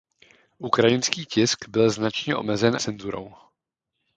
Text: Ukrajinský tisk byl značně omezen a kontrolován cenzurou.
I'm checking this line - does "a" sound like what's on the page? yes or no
no